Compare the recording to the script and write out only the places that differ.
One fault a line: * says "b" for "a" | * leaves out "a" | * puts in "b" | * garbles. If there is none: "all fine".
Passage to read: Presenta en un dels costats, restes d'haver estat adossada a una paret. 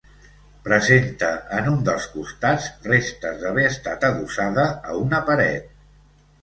all fine